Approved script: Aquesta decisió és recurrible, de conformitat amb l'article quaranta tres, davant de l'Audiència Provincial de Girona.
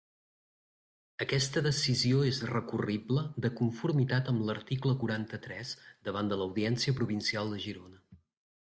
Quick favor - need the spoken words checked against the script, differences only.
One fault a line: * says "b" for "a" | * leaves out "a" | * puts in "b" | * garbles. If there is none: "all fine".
all fine